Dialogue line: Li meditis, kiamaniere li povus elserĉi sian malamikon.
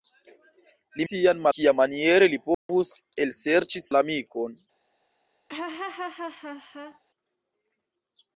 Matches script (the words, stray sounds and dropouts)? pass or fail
fail